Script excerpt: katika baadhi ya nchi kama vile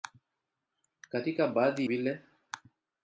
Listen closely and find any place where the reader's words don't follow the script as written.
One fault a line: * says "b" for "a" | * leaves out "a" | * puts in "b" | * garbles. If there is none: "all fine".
* leaves out "ya nchi kama"